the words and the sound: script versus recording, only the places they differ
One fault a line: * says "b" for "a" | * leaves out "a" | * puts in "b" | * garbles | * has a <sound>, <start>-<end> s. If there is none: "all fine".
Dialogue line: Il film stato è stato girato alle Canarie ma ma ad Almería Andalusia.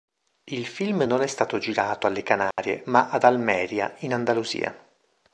* says "non" for "stato"
* has a dropout, 2.5-2.6 s
* leaves out "ma"
* puts in "in"